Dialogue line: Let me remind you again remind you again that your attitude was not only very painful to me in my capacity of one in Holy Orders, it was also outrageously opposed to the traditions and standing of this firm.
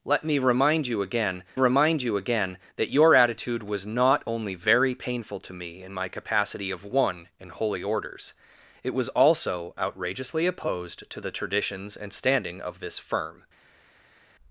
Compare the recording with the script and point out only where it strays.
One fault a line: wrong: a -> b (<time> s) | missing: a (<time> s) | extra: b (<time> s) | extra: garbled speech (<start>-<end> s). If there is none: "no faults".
no faults